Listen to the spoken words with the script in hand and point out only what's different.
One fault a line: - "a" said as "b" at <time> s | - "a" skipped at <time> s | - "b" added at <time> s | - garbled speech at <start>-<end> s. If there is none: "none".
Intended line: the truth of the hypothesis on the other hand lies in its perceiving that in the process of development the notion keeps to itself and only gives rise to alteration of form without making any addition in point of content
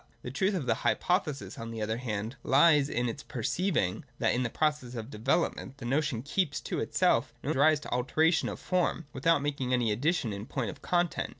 - "only gives" skipped at 7.5 s